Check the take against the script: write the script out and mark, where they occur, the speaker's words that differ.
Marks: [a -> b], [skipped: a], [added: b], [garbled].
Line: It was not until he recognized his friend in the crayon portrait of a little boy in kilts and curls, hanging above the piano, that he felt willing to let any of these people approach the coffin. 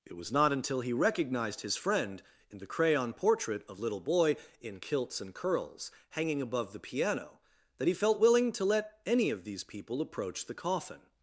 It was not until he recognized his friend in the crayon portrait of [skipped: a] little boy in kilts and curls, hanging above the piano, that he felt willing to let any of these people approach the coffin.